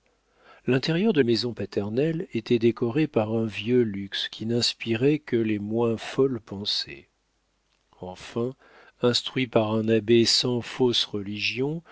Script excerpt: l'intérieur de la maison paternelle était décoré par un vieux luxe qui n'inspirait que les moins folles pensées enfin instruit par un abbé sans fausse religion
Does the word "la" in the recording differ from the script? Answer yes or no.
yes